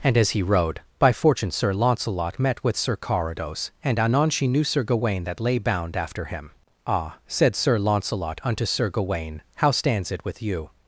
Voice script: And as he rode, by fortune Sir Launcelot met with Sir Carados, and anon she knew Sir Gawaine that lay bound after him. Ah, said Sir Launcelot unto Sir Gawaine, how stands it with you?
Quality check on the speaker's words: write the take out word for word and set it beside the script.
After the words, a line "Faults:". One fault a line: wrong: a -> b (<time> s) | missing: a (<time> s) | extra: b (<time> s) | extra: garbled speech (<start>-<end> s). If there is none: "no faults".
And as he rode, by fortune Sir Launcelot met with Sir Carados, and anon she knew Sir Gawaine that lay bound after him. Ah, said Sir Launcelot unto Sir Gawaine, how stands it with you?
Faults:
no faults